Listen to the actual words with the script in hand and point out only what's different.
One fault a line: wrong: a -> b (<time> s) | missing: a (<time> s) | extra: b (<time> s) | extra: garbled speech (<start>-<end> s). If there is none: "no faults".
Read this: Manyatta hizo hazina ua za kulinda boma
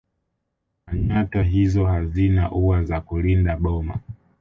no faults